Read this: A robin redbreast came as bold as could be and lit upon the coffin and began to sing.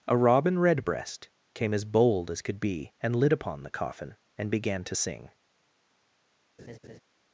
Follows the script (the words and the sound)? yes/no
no